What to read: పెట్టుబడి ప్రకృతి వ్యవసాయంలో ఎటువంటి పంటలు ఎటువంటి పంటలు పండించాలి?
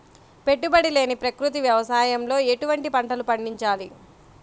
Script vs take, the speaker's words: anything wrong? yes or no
yes